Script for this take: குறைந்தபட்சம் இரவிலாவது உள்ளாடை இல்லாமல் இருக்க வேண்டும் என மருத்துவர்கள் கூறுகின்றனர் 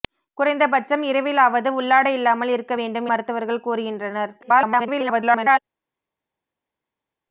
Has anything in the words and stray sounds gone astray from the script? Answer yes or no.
yes